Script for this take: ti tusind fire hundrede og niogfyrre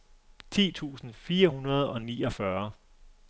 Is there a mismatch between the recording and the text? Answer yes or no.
no